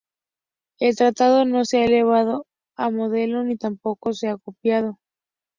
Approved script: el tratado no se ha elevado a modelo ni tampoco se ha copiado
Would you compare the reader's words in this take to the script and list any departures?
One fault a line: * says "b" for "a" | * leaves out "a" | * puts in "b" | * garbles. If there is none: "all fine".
all fine